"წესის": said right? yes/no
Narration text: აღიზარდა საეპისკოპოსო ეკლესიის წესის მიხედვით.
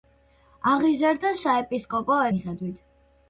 no